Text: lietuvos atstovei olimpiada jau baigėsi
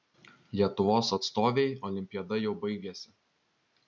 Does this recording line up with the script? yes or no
yes